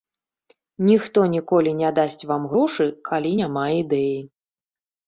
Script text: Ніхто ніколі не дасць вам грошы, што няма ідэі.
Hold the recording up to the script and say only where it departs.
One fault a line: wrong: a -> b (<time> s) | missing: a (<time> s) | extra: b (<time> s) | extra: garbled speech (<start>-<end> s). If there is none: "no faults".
wrong: што -> калі (3.1 s)